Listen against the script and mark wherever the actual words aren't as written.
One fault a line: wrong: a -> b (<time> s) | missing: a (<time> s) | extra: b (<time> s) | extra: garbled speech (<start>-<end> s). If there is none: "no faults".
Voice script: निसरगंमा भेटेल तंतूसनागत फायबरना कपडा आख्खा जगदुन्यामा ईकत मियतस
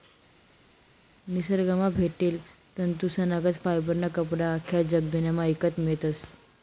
no faults